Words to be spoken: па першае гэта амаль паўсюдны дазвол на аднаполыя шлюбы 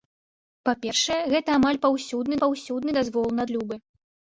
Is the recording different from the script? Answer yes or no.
yes